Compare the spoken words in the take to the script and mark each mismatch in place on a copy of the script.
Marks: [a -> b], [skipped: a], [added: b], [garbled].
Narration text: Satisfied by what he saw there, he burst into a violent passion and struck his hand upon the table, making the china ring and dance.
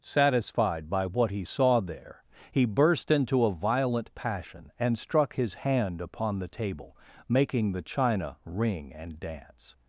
Satisfied by what he saw there, he burst into a violent passion and struck his hand upon the table, making the china ring and dance.